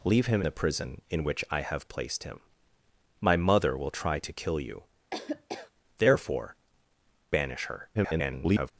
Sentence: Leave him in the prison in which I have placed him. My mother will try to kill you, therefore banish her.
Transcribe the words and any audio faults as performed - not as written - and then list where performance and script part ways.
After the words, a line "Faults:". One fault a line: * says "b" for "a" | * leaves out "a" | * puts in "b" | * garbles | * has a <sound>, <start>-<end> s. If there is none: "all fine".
Leave him the prison in which I have placed him. My mother will try to kill you, therefore banish her. [garbled]
Faults:
* leaves out "in"
* has a laugh, 5.1-5.7 s
* garbles